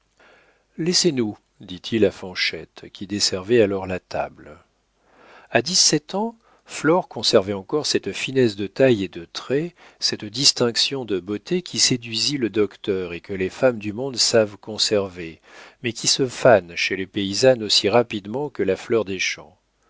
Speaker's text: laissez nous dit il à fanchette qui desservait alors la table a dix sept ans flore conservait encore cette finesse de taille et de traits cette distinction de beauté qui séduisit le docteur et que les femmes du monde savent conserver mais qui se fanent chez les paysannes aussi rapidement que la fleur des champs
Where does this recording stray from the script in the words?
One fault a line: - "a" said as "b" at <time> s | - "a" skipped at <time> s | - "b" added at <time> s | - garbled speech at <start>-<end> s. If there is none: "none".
none